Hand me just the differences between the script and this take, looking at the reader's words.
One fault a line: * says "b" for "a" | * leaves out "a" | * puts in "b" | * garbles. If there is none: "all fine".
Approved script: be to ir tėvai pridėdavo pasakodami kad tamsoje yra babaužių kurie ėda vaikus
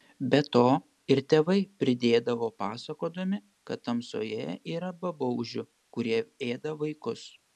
all fine